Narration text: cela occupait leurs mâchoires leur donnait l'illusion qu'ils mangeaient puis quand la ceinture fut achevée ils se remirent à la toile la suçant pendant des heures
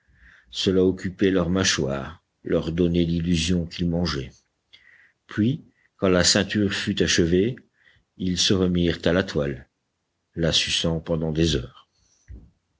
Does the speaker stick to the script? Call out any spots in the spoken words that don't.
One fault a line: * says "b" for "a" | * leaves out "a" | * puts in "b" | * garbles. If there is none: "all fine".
all fine